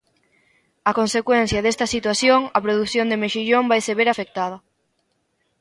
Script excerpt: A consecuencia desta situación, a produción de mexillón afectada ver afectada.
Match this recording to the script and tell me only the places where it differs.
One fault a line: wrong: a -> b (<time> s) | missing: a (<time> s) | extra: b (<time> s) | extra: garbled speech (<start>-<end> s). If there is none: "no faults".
wrong: afectada -> vaise (3.7 s)